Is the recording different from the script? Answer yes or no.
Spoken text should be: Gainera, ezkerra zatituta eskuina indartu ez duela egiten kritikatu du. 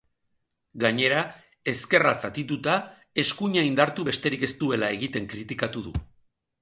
yes